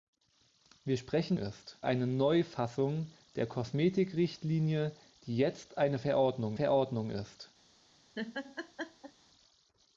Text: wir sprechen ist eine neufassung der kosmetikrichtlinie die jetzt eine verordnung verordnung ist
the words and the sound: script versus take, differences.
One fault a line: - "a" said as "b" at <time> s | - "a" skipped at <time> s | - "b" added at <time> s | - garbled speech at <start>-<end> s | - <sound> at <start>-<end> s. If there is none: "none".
- laugh at 8.1-9.1 s